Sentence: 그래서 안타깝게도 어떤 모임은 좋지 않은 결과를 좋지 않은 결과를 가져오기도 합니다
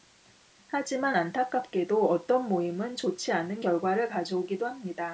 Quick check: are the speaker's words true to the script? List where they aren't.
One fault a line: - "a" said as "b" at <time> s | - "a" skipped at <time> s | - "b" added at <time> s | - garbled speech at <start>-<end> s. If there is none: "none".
- "그래서" said as "하지만" at 0.7 s
- "좋지 않은 결과를" skipped at 4.1 s